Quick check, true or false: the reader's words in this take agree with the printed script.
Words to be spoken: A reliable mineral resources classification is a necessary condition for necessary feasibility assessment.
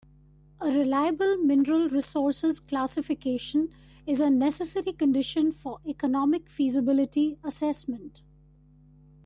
false